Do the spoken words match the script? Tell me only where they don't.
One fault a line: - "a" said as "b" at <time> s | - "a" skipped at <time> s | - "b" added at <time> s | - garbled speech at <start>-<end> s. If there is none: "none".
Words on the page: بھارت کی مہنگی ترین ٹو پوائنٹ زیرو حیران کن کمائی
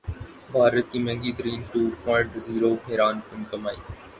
none